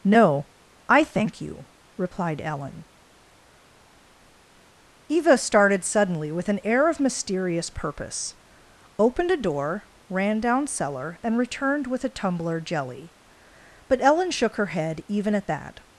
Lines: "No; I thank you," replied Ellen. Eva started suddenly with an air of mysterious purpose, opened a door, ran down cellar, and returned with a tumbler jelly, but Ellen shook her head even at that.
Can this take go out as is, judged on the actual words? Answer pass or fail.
pass